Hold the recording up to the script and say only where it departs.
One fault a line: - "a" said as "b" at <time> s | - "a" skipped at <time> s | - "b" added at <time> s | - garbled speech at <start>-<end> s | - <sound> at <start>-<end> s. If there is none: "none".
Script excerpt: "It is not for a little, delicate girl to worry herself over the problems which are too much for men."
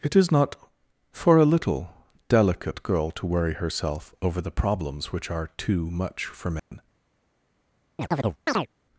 - dropout at 6.6-6.7 s
- chirp at 8.0-8.7 s